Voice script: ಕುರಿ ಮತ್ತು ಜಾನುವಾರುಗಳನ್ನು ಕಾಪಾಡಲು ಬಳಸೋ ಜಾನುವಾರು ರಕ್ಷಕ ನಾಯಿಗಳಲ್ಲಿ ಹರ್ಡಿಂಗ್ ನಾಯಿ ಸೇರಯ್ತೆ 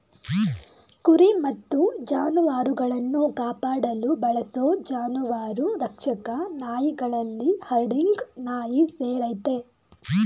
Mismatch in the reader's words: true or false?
false